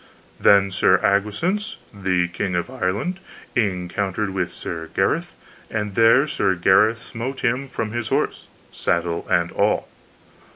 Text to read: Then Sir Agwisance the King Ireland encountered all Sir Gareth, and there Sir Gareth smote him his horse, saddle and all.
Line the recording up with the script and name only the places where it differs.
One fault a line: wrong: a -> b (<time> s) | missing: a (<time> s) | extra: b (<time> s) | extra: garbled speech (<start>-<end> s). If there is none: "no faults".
extra: of (2.5 s)
wrong: all -> with (4.3 s)
extra: from (7.7 s)